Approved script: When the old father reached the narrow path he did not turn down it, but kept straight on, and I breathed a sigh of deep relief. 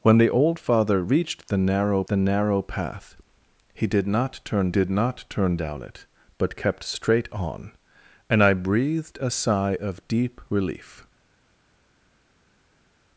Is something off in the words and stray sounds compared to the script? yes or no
yes